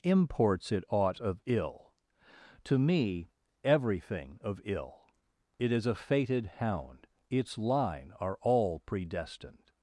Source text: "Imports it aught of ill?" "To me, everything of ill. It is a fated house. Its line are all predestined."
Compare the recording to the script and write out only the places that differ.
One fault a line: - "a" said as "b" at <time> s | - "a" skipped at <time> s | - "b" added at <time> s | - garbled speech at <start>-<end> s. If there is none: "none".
- "house" said as "hound" at 6.5 s